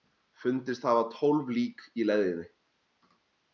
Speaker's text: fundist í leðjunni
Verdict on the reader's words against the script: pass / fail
fail